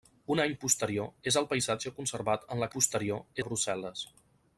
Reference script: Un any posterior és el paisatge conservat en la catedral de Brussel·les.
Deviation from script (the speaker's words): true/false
true